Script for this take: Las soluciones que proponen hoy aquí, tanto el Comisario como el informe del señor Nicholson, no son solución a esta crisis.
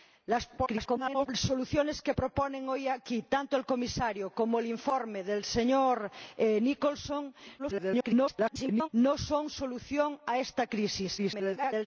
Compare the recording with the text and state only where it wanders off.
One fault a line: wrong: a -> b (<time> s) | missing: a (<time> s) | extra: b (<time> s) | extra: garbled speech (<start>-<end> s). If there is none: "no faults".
extra: garbled speech (0.6-1.3 s)
extra: garbled speech (7.6-8.9 s)
extra: garbled speech (11.2-11.9 s)